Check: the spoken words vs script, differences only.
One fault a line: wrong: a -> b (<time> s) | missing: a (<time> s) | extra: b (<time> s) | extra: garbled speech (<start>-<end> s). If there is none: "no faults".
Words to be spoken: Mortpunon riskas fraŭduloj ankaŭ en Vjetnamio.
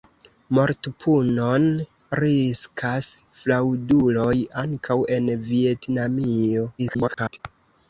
extra: garbled speech (6.8-7.4 s)